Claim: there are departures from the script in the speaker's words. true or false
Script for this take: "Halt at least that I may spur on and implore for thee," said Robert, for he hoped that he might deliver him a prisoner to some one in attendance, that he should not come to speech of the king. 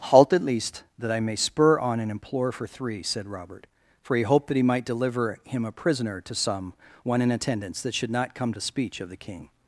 true